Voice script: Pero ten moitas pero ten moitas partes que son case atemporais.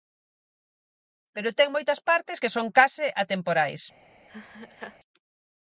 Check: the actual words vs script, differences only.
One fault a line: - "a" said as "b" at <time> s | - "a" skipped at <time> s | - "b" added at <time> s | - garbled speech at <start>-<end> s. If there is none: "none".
- "pero ten moitas" skipped at 2.0 s